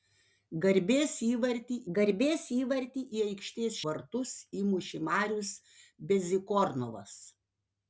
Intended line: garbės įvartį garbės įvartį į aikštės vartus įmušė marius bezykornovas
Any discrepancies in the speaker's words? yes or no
no